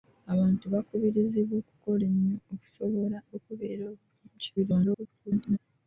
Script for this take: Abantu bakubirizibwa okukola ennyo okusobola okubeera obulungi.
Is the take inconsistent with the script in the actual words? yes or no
yes